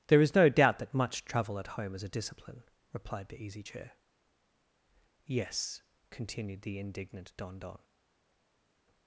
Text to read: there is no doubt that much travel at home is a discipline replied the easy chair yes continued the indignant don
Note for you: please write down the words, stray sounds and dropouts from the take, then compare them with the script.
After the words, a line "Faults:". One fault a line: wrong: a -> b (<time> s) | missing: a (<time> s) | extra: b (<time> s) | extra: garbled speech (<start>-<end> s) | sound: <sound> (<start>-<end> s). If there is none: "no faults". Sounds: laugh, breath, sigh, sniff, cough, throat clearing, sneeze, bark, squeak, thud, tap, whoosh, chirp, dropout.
there is no doubt that much travel at home is a discipline replied the easy chair yes continued the indignant don don
Faults:
extra: don (7.6 s)